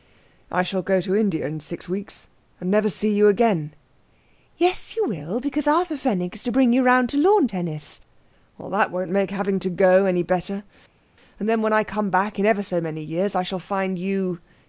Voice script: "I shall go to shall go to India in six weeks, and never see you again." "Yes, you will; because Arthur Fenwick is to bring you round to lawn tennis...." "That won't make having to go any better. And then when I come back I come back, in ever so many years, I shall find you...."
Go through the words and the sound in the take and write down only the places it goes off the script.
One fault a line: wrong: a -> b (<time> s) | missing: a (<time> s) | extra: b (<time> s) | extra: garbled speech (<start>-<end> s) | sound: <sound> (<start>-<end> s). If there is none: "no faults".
missing: shall go to (1.1 s)
missing: I come back (12.4 s)